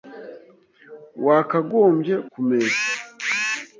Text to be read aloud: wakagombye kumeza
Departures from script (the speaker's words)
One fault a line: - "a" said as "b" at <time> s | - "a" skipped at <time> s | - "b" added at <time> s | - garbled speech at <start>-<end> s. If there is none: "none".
none